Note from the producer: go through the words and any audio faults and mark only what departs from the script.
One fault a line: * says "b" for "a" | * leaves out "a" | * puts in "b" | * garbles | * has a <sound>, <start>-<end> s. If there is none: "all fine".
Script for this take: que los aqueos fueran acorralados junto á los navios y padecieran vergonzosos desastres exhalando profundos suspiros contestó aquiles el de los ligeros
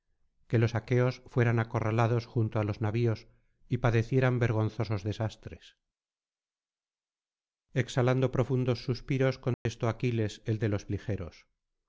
* has a dropout, 9.5-9.7 s